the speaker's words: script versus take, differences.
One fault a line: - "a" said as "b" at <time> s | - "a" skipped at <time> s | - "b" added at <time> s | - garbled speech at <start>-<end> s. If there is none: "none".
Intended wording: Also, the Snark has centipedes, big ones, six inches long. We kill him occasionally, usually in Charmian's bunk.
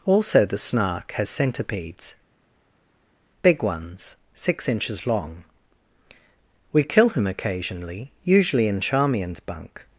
none